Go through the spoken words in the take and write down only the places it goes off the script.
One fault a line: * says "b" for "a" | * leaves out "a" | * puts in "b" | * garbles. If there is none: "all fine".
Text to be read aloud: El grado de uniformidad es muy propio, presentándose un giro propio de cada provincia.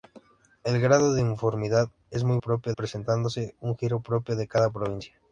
all fine